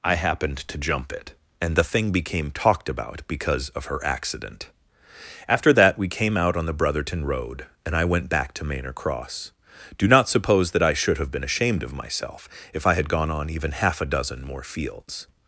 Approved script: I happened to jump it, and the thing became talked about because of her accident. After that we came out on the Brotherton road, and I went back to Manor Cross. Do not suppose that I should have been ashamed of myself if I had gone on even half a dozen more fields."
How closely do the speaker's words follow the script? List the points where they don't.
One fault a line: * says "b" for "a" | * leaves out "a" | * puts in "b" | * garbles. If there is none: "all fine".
all fine